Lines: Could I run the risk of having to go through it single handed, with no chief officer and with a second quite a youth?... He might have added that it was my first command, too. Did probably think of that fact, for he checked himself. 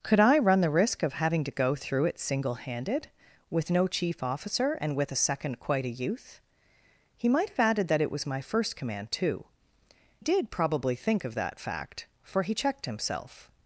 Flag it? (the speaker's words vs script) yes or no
no